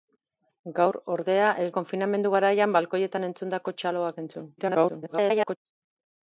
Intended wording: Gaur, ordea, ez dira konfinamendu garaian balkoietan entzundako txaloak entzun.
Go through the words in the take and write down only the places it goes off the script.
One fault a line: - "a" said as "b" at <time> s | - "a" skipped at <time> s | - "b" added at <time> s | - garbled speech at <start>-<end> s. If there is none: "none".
- "dira" skipped at 1.7 s
- garbled speech at 4.6-5.6 s